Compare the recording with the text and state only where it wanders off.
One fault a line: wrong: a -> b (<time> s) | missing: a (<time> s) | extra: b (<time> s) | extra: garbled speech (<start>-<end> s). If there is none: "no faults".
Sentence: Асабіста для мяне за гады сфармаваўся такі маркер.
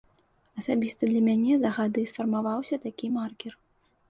no faults